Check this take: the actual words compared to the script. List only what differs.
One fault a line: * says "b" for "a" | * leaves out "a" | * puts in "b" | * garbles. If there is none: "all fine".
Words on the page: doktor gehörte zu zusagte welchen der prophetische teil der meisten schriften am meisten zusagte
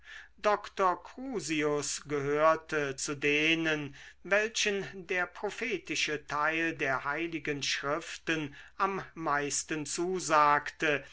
* puts in "crusius"
* says "denen" for "zusagte"
* says "heiligen" for "meisten"